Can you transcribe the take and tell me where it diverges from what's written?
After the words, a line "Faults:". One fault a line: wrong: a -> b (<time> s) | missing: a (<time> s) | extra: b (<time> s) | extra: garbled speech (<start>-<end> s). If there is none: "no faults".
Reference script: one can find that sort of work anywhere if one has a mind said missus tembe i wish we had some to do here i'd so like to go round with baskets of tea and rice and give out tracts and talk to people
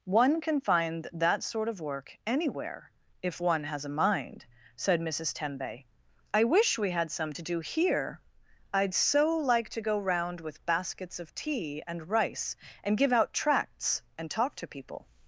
one can find that sort of work anywhere if one has a mind said missus tembe i wish we had some to do here i'd so like to go round with baskets of tea and rice and give out tracts and talk to people
Faults:
no faults